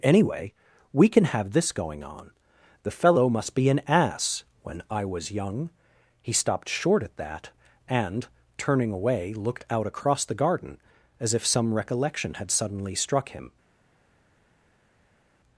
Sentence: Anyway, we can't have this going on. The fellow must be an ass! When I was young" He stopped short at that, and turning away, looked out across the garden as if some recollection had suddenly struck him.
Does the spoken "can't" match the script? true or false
false